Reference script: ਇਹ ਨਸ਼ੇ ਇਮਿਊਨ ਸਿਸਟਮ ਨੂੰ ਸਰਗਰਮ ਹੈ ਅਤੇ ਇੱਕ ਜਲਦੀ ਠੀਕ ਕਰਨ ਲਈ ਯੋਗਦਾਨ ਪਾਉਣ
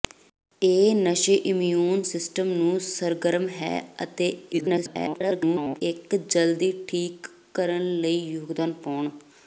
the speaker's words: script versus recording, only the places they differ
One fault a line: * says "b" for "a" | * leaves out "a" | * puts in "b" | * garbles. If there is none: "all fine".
* garbles